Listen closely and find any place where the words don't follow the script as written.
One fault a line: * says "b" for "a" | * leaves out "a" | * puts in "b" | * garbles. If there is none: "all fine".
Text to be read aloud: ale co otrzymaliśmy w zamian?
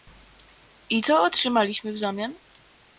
* says "I" for "ale"